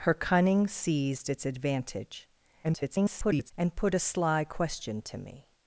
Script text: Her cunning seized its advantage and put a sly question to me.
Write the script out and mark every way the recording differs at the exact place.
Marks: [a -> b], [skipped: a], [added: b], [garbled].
Her cunning seized its advantage [garbled] and put a sly question to me.